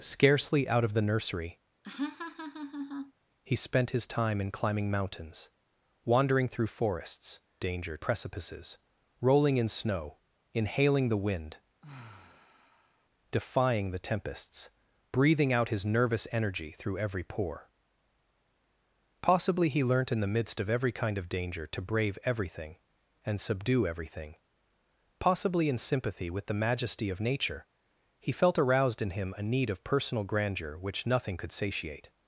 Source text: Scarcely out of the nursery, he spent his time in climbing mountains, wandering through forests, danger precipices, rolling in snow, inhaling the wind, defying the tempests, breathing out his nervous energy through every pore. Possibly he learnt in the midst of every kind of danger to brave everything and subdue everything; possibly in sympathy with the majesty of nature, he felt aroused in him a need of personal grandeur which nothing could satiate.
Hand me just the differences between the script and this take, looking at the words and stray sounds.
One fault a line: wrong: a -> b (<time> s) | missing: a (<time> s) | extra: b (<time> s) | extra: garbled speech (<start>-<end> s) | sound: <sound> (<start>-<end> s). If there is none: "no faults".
sound: laugh (1.8-3.1 s)
sound: sigh (11.8-13.1 s)